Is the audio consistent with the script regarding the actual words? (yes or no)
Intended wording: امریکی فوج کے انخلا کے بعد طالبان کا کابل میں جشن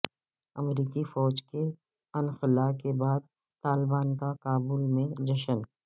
yes